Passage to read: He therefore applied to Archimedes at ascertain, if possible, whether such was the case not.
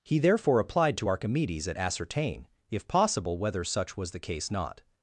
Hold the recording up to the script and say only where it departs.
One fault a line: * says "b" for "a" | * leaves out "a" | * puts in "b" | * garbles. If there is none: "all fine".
all fine